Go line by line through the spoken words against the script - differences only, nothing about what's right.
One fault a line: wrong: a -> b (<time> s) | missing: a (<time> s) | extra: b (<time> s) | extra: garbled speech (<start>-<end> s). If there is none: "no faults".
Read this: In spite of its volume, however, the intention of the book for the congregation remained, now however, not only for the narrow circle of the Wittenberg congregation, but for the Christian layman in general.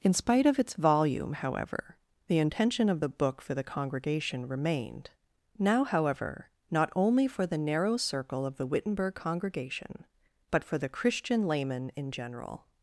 no faults